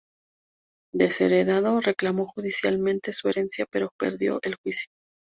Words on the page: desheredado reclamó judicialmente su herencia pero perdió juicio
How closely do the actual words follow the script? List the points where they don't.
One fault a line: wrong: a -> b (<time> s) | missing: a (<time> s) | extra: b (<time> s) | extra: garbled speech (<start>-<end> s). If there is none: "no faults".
extra: el (4.4 s)